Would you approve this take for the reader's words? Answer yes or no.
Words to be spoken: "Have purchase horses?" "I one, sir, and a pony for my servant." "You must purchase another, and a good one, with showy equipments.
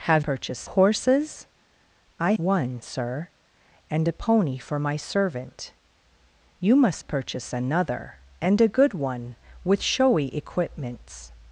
yes